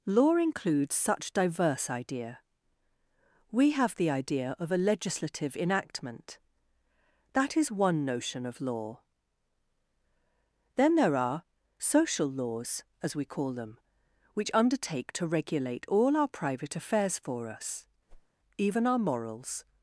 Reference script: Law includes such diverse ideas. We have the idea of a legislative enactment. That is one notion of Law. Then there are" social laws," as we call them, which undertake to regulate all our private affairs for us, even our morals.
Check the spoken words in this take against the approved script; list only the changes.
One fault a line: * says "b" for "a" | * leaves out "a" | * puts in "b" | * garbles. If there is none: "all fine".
* says "idea" for "ideas"